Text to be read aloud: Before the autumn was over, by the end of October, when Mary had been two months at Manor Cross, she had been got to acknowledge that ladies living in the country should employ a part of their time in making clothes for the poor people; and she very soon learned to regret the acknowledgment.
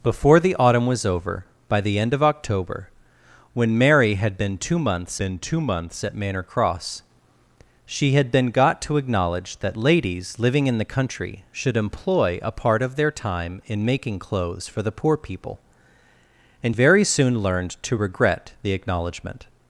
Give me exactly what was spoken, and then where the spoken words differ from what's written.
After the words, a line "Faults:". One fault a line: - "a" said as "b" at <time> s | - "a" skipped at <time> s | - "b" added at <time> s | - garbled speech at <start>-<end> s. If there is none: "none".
Before the autumn was over, by the end of October, when Mary had been two months been two months at Manor Cross, she had been got to acknowledge that ladies living in the country should employ a part of their time in making clothes for the poor people; and very soon learned to regret the acknowledgment.
Faults:
- "been two months" added at 5.1 s
- "she" skipped at 16.8 s